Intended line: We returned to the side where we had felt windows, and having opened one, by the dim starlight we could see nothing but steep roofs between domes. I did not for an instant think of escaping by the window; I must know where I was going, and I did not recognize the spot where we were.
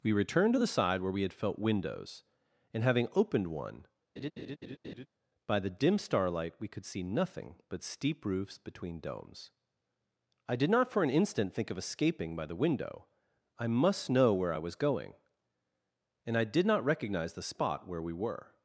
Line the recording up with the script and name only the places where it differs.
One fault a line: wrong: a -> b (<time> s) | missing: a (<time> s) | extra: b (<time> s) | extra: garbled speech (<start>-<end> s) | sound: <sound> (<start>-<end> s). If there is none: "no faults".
sound: laugh (4.2-5.1 s)